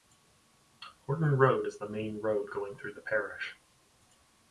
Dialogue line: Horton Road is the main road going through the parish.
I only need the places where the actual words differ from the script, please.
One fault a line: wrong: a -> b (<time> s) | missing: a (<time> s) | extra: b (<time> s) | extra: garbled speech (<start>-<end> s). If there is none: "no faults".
no faults